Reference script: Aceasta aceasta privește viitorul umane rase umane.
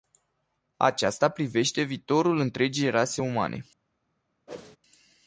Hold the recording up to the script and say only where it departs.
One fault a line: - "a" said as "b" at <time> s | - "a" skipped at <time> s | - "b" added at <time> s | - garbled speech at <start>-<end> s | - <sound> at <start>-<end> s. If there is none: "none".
- "aceasta" skipped at 1.3 s
- "umane" said as "întregii" at 2.4 s
- whoosh at 4.5-4.8 s